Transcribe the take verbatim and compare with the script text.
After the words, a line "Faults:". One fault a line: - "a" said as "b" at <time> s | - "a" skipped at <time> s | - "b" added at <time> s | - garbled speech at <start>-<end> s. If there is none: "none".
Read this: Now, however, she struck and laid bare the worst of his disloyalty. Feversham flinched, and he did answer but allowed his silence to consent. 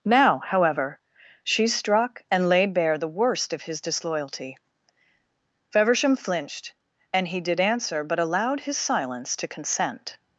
Now, however, she struck and laid bare the worst of his disloyalty. Feversham flinched, and he did answer but allowed his silence to consent.
Faults:
none